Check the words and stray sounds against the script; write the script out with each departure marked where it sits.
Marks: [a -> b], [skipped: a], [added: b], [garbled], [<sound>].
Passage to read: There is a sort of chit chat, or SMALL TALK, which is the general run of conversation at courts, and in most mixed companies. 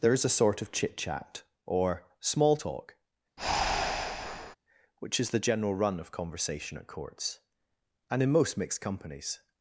There is a sort of chit chat, or SMALL TALK, [breath] which is the general run of conversation at courts, and in most mixed companies.